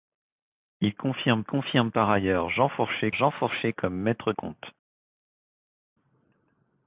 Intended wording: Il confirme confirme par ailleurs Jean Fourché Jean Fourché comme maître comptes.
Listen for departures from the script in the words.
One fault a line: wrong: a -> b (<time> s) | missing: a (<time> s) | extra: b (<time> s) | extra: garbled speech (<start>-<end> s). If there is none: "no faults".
no faults